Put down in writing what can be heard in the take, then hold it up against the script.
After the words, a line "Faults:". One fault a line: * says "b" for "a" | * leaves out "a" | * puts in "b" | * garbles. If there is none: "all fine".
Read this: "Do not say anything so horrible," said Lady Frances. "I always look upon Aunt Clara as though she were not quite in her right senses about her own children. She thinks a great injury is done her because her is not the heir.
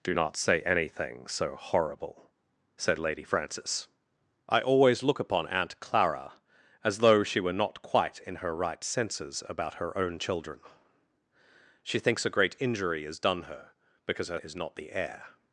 "Do not say anything so horrible," said Lady Frances. "I always look upon Aunt Clara as though she were not quite in her right senses about her own children. She thinks a great injury is done her because her is not the heir.
Faults:
all fine